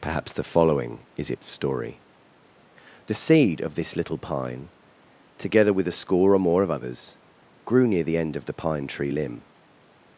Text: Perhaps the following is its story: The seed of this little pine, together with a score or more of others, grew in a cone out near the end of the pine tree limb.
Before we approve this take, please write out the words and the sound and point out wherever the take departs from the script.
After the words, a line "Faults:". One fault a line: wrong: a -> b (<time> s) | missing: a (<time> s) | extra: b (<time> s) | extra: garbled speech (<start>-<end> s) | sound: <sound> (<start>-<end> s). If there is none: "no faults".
Perhaps the following is its story: The seed of this little pine, together with a score or more of others, grew near the end of the pine tree limb.
Faults:
missing: in a cone out (7.8 s)